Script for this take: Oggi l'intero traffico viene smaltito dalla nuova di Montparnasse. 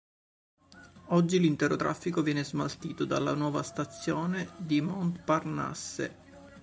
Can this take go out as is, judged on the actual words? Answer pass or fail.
fail